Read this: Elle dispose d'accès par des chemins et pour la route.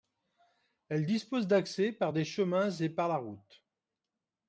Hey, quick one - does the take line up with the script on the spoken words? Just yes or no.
no